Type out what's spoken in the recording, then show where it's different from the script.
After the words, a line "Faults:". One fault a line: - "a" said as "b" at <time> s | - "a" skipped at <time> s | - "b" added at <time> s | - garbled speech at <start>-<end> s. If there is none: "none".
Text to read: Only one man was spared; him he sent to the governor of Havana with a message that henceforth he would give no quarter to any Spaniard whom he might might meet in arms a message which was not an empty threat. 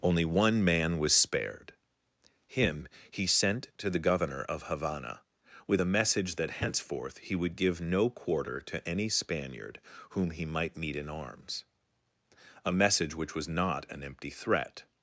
Only one man was spared; him he sent to the governor of Havana with a message that henceforth he would give no quarter to any Spaniard whom he might meet in arms a message which was not an empty threat.
Faults:
- "might" skipped at 10.8 s